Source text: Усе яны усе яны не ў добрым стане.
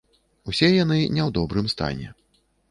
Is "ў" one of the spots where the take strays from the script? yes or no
no